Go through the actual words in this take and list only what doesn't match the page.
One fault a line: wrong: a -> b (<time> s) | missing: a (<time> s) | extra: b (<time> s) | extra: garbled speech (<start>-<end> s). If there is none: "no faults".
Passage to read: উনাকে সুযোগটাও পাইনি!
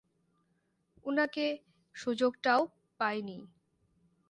no faults